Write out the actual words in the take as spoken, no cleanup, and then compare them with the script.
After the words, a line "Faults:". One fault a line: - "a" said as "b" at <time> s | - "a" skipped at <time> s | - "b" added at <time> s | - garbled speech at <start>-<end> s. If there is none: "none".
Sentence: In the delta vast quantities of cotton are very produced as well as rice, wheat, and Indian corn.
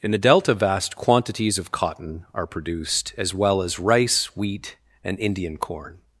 In the delta vast quantities of cotton are produced as well as rice, wheat, and Indian corn.
Faults:
- "very" skipped at 2.5 s